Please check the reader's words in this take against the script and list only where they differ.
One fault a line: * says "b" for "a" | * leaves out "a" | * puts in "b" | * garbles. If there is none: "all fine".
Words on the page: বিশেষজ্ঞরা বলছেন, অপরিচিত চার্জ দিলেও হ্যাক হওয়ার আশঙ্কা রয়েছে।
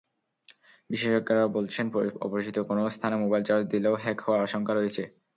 * puts in "কোনো স্থানে মোবাইল"